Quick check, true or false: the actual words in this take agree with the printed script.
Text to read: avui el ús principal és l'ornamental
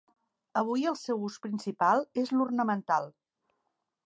false